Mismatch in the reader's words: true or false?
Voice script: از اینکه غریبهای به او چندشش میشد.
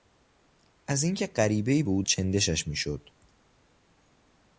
false